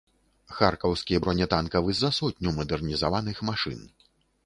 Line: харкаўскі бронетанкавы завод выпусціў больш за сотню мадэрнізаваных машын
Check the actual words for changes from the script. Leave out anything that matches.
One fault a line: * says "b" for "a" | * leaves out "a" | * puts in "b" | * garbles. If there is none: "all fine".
* leaves out "завод выпусціў больш"